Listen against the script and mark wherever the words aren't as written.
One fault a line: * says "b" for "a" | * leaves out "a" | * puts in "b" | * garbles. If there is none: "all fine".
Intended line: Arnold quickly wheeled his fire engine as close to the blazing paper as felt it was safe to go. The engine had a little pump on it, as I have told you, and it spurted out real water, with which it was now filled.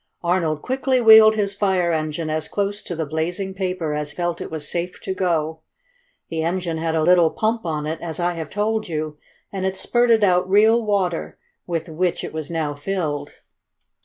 all fine